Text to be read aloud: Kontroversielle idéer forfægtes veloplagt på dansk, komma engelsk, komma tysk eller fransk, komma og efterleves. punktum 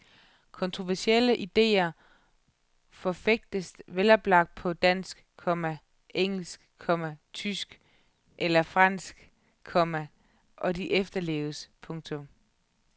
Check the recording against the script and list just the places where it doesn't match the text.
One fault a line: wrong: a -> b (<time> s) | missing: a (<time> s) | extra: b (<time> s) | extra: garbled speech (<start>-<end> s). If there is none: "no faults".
extra: de (10.8 s)